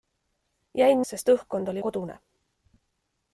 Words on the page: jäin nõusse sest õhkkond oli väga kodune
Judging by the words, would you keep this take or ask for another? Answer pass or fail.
fail